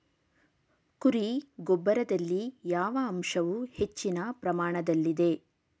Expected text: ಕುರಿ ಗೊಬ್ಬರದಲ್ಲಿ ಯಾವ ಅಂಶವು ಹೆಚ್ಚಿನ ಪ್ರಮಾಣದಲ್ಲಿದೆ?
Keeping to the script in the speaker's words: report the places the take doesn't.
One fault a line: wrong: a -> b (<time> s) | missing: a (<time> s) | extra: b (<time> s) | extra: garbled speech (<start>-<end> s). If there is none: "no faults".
no faults